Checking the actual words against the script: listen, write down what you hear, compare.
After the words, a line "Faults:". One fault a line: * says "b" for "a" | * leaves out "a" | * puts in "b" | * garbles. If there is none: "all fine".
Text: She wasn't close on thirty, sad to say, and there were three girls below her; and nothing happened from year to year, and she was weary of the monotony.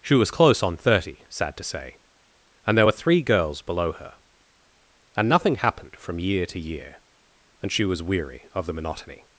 She was close on thirty, sad to say, and there were three girls below her; and nothing happened from year to year, and she was weary of the monotony.
Faults:
* says "was" for "wasn't"